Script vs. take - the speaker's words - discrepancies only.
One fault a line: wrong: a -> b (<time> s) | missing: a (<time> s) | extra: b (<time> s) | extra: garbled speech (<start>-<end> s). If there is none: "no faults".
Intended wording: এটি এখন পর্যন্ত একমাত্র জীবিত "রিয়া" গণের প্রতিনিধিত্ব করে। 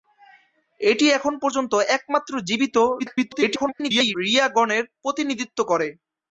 extra: garbled speech (3.0-4.2 s)